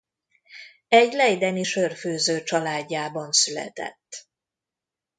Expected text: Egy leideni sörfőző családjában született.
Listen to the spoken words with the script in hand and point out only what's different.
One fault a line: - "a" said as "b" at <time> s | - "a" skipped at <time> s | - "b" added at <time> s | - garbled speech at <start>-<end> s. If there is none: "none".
none